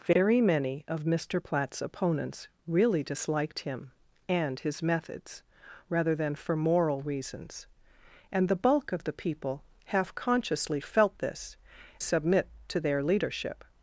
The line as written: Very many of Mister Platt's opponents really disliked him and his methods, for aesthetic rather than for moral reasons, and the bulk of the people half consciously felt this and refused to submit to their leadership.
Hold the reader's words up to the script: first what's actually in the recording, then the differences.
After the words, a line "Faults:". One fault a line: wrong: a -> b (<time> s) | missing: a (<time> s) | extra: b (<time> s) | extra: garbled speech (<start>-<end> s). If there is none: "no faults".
Very many of Mister Platt's opponents really disliked him and his methods, rather than for moral reasons, and the bulk of the people half consciously felt this submit to their leadership.
Faults:
missing: for aesthetic (5.4 s)
missing: and refused to (11.6 s)